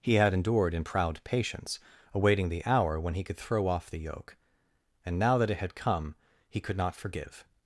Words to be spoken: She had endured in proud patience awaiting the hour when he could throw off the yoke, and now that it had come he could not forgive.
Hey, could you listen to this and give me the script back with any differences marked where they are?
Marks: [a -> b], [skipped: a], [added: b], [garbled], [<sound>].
[She -> He] had endured in proud patience awaiting the hour when he could throw off the yoke, and now that it had come he could not forgive.